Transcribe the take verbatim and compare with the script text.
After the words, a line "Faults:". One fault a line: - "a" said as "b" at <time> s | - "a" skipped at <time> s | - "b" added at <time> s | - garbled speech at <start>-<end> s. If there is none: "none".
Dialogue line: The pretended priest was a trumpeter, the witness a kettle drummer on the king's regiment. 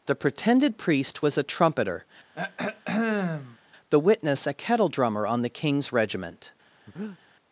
The pretended priest was a trumpeter, the witness a kettle drummer on the king's regiment.
Faults:
none